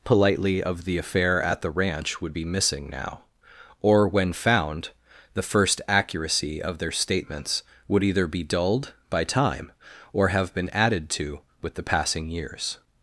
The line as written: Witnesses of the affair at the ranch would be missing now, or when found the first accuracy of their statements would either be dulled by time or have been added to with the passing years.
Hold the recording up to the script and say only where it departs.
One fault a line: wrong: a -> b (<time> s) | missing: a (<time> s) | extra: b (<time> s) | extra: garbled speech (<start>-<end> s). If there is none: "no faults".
wrong: Witnesses -> Politely (0.0 s)